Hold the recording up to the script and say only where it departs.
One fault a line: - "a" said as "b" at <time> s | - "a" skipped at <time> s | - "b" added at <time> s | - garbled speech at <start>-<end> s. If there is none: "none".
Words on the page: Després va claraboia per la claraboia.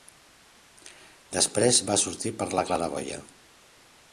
- "claraboia" said as "sortir" at 2.0 s